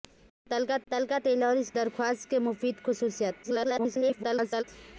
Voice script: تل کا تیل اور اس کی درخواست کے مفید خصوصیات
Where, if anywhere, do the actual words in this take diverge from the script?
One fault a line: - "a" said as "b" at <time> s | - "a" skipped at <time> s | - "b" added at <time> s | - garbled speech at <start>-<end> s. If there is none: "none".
- "تل کا" added at 0.9 s
- "کی" skipped at 1.7 s
- garbled speech at 3.4-4.6 s